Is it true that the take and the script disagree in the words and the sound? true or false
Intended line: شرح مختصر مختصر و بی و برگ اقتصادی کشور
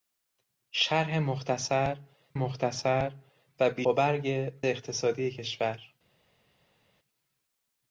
false